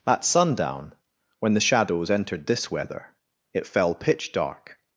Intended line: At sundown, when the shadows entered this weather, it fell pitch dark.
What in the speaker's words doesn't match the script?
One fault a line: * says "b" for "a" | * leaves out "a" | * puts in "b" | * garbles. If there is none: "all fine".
all fine